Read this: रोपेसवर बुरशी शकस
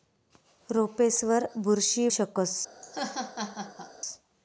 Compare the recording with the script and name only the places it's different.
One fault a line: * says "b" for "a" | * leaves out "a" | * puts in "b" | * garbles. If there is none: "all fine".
all fine